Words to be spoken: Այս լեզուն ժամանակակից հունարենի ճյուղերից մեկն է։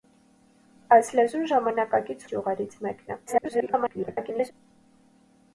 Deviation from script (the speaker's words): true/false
true